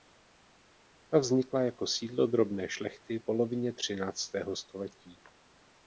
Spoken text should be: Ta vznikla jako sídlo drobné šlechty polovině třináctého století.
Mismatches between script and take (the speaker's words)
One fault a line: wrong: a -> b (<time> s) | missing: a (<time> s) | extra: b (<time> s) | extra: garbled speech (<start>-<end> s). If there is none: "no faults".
no faults